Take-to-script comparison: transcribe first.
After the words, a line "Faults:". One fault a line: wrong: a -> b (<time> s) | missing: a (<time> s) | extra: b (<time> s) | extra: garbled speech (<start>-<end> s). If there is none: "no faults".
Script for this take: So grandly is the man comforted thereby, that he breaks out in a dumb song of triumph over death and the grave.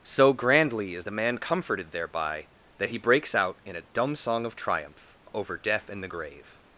So grandly is the man comforted thereby, that he breaks out in a dumb song of triumph over death and the grave.
Faults:
no faults